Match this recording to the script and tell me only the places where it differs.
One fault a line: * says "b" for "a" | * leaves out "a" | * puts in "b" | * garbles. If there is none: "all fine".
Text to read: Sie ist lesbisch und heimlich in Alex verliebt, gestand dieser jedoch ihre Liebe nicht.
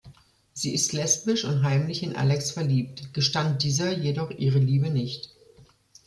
all fine